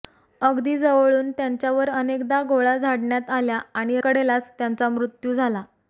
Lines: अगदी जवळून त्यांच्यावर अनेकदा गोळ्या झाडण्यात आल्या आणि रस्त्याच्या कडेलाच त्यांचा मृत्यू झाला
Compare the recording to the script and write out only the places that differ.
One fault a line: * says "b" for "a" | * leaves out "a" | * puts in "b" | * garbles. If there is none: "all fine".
* leaves out "रस्त्याच्या"